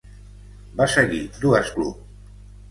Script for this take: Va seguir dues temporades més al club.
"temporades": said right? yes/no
no